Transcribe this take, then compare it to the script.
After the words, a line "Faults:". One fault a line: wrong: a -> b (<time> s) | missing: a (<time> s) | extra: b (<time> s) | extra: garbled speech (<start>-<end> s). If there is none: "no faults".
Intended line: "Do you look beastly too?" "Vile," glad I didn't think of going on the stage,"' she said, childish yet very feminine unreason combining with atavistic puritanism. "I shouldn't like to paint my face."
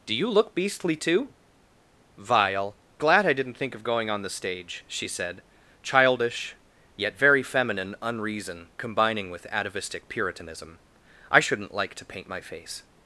"Do you look beastly too?" "Vile," glad I didn't think of going on the stage,"' she said, childish yet very feminine unreason combining with atavistic puritanism. "I shouldn't like to paint my face."
Faults:
no faults